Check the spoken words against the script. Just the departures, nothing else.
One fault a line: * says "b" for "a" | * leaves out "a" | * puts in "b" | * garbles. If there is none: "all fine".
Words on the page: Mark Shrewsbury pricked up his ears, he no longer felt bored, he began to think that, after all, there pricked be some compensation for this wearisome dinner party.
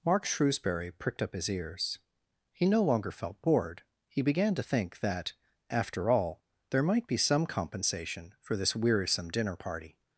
* says "might" for "pricked"